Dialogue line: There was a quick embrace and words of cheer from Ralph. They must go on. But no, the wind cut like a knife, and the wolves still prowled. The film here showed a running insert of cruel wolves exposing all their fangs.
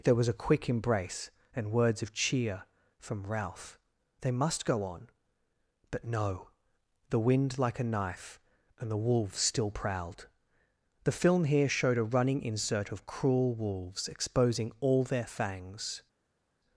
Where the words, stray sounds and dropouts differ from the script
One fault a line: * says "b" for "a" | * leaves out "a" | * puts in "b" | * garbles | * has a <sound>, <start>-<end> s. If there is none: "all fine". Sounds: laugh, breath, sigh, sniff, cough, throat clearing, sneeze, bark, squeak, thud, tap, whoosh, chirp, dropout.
* leaves out "cut"